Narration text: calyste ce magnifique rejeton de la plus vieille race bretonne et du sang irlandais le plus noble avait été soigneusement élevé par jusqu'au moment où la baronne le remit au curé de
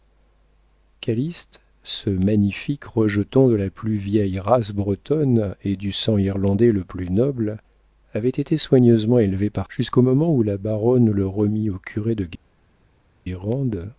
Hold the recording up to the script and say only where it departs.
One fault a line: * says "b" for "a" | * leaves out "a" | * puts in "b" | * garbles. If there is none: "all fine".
all fine